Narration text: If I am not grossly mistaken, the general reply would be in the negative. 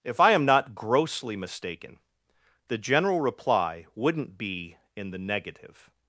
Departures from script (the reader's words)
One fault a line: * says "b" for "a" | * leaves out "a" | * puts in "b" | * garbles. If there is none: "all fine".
* says "wouldn't" for "would"